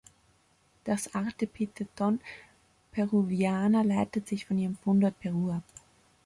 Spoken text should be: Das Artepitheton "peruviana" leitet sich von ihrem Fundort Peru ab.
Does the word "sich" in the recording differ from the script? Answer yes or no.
no